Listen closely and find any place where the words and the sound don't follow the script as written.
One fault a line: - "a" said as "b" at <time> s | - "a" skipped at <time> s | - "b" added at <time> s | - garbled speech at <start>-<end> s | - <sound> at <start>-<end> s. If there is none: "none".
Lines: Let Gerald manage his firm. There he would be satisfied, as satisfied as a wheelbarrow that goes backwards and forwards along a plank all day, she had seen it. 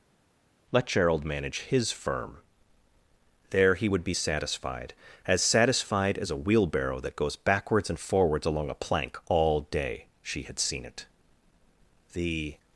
- "The" added at 12.1 s